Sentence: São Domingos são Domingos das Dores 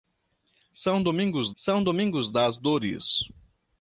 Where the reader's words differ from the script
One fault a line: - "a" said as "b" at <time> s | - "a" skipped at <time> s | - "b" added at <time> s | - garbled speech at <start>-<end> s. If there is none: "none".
none